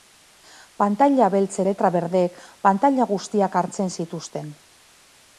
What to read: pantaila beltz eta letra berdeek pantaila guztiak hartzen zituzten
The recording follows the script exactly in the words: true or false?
false